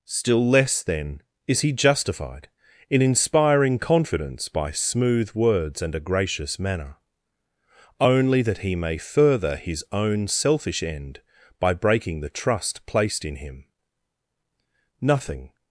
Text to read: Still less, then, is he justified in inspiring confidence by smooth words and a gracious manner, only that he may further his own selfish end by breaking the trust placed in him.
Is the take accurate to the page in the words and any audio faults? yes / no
no